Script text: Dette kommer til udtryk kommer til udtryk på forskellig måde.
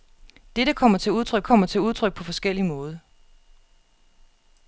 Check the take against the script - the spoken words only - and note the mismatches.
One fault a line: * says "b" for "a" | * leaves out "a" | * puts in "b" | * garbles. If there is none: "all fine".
all fine